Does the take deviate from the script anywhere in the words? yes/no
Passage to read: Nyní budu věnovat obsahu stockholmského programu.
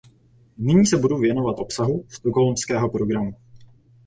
yes